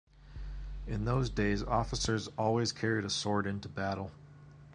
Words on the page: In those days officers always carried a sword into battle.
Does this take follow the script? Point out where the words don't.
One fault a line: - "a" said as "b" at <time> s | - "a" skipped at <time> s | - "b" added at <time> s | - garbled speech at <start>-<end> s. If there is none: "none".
none